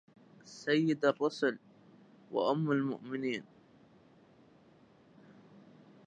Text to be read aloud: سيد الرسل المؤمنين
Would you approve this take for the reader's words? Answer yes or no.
no